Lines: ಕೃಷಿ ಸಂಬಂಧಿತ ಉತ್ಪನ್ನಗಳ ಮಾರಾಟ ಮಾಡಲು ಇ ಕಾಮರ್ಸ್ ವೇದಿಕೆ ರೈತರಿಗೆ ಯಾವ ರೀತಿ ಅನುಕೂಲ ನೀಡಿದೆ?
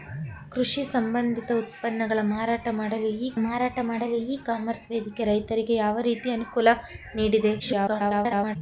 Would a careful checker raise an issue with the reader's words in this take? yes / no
yes